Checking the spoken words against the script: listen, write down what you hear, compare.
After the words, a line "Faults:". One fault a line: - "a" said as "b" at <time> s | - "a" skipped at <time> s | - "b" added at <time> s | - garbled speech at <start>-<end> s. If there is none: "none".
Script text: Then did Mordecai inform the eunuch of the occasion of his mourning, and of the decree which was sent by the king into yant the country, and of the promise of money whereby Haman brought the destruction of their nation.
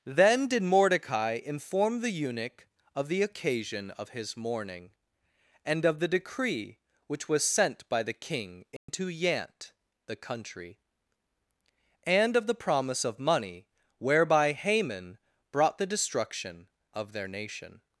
Then did Mordecai inform the eunuch of the occasion of his mourning, and of the decree which was sent by the king into yant the country, and of the promise of money whereby Haman brought the destruction of their nation.
Faults:
none